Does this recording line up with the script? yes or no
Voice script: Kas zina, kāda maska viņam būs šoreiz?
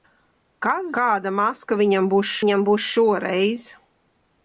no